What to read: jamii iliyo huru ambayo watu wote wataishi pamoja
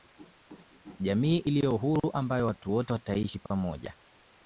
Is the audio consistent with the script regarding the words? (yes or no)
yes